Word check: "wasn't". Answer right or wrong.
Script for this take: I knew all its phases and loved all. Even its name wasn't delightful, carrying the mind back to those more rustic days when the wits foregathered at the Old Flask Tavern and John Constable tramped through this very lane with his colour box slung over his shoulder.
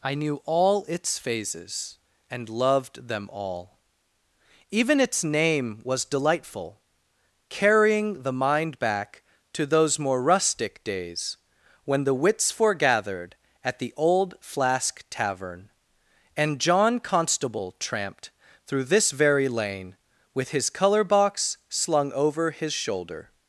wrong